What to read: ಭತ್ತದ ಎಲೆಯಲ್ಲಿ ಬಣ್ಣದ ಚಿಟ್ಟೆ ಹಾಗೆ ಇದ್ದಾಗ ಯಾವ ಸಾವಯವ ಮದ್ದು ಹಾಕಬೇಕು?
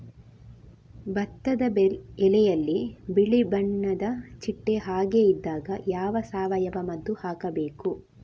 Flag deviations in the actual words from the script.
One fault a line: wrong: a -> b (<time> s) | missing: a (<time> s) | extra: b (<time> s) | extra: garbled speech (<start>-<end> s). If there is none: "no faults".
extra: ಬಿಳಿ (3.1 s)